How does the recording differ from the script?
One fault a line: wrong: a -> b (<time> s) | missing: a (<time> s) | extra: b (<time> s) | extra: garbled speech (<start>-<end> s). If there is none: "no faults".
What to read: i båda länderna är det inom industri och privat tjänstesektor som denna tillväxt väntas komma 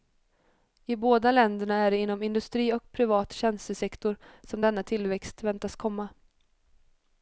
no faults